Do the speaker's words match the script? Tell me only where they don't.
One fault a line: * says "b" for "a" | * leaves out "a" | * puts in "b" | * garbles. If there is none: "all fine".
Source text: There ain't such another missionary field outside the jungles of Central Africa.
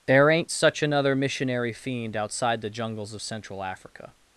* says "fiend" for "field"